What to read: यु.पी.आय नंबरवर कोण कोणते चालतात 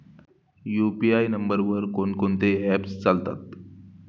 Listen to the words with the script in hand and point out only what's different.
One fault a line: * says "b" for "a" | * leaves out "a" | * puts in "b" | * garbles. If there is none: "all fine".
* puts in "ऍप्स"